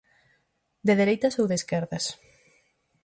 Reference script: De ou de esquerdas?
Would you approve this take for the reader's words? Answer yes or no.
no